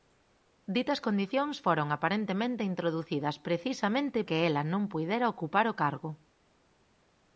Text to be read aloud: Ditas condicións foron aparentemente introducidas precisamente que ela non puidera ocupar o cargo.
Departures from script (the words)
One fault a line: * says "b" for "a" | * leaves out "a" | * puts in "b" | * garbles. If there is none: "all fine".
all fine